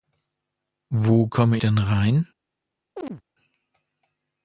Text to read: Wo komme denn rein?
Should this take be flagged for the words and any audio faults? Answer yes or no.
yes